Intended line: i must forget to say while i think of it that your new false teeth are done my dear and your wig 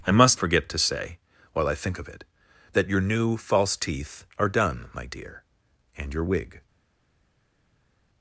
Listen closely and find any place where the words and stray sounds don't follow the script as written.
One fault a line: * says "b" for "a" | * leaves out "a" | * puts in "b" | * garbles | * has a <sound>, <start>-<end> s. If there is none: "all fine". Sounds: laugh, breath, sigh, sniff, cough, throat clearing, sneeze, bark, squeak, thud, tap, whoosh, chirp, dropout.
all fine